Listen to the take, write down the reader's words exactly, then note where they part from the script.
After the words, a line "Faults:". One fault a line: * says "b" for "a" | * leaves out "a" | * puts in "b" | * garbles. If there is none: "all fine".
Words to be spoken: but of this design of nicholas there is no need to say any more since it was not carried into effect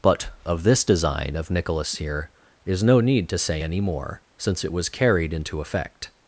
but of this design of nicholas here is no need to say any more since it was carried into effect
Faults:
* says "here" for "there"
* leaves out "not"